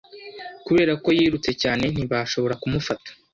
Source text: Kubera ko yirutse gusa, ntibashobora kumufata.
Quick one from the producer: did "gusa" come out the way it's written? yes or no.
no